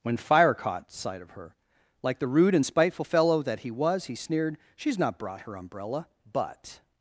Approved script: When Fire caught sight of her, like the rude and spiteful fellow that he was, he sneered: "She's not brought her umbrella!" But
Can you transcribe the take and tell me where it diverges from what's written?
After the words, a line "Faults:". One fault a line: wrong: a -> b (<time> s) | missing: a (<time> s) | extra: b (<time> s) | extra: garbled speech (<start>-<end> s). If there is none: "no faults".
When Fire caught sight of her, like the rude and spiteful fellow that he was, he sneered: "She's not brought her umbrella!" But
Faults:
no faults